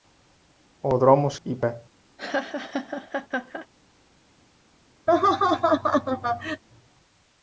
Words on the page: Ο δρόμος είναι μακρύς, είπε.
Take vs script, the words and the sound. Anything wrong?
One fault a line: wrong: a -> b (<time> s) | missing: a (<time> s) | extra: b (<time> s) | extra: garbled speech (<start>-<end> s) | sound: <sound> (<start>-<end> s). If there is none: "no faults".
missing: είναι μακρύς (1.4 s)
sound: laugh (2.2-3.7 s)
sound: laugh (5.1-6.6 s)